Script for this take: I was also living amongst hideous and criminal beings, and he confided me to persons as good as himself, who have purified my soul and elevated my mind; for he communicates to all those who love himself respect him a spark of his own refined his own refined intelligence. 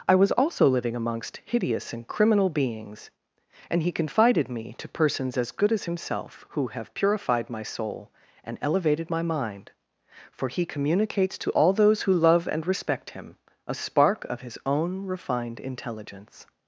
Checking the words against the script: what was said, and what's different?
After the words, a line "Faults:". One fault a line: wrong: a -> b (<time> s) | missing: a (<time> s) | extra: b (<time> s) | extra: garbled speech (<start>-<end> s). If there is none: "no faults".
I was also living amongst hideous and criminal beings, and he confided me to persons as good as himself, who have purified my soul and elevated my mind; for he communicates to all those who love and respect him a spark of his own refined intelligence.
Faults:
wrong: himself -> and (12.5 s)
missing: his own refined (15.6 s)